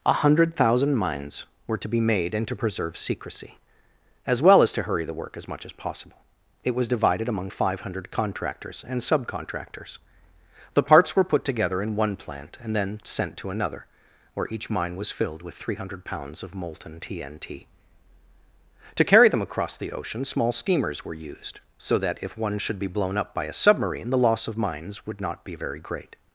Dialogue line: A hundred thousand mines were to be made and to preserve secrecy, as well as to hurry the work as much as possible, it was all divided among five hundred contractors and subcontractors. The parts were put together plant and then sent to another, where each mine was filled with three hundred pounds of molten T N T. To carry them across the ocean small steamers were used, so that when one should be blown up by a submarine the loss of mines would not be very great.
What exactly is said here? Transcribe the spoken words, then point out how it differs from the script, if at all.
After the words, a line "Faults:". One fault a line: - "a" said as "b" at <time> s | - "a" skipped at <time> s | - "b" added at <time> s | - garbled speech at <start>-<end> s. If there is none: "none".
A hundred thousand mines were to be made and to preserve secrecy, as well as to hurry the work as much as possible, it was divided among five hundred contractors and subcontractors. The parts were put together in one plant and then sent to another, where each mine was filled with three hundred pounds of molten T N T. To carry them across the ocean small steamers were used, so that if one should be blown up by a submarine the loss of mines would not be very great.
Faults:
- "all" skipped at 6.9 s
- "in one" added at 11.8 s
- "when" said as "if" at 22.2 s